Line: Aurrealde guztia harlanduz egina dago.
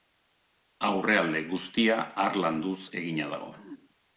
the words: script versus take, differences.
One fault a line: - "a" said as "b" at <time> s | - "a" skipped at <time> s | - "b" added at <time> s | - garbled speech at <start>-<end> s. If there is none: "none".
none